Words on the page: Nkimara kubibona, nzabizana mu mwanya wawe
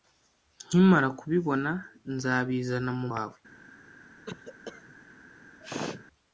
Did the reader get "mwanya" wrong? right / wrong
wrong